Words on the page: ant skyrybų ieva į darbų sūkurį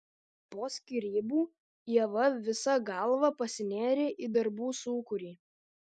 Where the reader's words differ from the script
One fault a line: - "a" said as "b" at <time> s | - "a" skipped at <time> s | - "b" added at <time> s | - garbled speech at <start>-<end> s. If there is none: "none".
- "ant" said as "po" at 0.5 s
- "visa galva pasinėrė" added at 2.5 s